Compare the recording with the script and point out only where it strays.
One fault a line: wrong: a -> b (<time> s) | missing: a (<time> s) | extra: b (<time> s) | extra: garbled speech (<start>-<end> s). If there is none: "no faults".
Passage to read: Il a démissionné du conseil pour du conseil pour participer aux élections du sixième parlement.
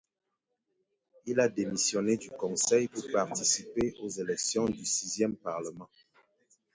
missing: du conseil pour (3.0 s)